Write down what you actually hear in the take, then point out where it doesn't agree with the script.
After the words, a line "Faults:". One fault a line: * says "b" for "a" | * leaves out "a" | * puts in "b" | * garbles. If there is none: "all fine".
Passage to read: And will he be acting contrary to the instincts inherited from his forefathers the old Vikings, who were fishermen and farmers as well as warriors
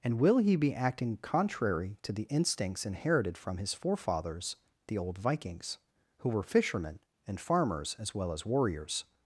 And will he be acting contrary to the instincts inherited from his forefathers the old Vikings, who were fishermen and farmers as well as warriors
Faults:
all fine